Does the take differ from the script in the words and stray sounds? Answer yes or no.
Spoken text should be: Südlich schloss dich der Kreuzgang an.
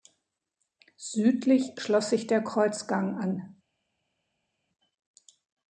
yes